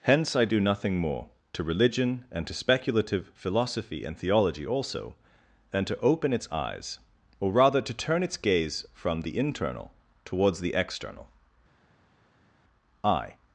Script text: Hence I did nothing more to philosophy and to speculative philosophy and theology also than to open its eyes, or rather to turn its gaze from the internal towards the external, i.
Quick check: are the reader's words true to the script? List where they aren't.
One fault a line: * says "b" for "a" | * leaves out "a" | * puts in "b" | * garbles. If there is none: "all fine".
* says "do" for "did"
* says "religion" for "philosophy"